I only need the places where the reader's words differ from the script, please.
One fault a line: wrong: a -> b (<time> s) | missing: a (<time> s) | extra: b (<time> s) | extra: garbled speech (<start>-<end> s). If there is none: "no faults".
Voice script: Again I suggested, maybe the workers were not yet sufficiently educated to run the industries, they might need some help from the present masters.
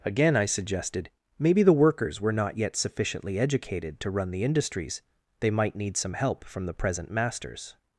no faults